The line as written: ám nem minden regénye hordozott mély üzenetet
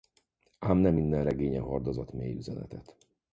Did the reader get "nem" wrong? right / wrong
right